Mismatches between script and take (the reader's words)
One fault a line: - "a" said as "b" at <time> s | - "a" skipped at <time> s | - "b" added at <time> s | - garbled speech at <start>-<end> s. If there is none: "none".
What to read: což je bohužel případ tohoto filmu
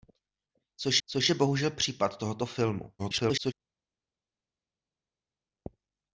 - "což" added at 1.1 s
- garbled speech at 3.0-3.5 s